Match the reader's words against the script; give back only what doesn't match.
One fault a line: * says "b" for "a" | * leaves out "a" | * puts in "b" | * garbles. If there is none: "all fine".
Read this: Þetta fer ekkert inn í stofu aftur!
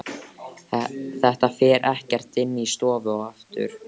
all fine